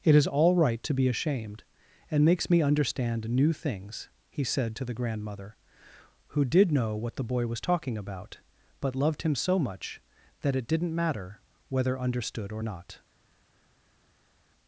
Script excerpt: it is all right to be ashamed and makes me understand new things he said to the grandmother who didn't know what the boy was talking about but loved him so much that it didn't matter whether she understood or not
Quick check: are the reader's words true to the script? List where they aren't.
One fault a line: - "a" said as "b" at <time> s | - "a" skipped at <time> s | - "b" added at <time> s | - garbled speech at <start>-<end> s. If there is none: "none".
- "didn't" said as "did" at 6.5 s
- "she" skipped at 12.0 s